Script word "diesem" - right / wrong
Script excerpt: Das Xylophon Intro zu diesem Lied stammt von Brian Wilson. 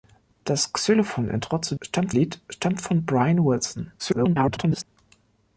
wrong